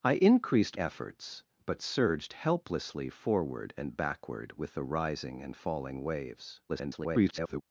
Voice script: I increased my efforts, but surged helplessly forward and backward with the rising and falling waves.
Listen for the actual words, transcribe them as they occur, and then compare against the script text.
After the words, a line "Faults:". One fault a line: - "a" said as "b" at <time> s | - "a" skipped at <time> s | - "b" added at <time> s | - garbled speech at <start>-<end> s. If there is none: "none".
I increased efforts, but surged helplessly forward and backward with the rising and falling waves. [garbled]
Faults:
- "my" skipped at 0.8 s
- garbled speech at 6.7-7.6 s